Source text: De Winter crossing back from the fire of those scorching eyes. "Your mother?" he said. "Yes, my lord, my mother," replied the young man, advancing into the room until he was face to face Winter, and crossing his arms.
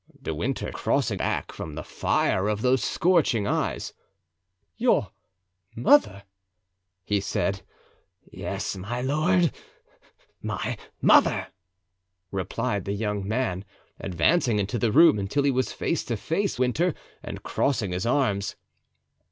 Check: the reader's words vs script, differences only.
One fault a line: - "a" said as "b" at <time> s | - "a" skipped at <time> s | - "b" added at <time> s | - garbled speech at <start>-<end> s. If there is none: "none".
none